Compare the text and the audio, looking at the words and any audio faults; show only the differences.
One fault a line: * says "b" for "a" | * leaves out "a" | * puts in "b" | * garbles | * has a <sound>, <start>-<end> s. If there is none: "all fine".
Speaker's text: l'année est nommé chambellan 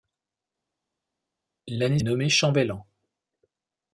all fine